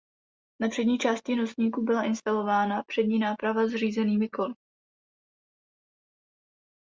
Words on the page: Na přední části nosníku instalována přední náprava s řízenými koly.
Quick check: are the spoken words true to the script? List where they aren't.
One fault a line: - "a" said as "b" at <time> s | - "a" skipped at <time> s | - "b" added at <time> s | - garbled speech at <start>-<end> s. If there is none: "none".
- "byla" added at 1.8 s